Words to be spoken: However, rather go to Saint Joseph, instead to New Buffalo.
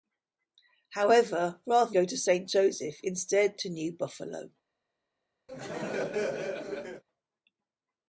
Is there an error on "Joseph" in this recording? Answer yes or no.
no